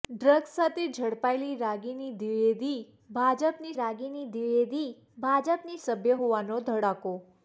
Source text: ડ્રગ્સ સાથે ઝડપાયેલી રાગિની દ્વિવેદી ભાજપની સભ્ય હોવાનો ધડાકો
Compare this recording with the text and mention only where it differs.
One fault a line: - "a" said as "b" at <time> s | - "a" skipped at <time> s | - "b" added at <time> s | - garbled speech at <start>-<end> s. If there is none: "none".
- "રાગિની દ્વિવેદી ભાજપની" added at 3.8 s